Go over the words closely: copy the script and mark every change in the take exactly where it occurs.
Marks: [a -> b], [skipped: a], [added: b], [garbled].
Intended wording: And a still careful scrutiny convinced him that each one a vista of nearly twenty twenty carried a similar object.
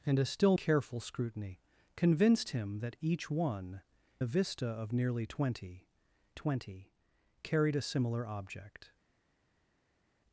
And a still careful scrutiny convinced him that each one a vista of nearly twenty twenty carried a similar object.